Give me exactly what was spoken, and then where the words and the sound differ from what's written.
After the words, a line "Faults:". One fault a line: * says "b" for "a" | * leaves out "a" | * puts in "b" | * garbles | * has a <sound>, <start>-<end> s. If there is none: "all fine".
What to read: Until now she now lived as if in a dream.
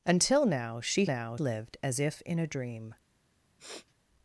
Until now she now lived as if in a dream.
Faults:
* has a sniff, 3.6-3.9 s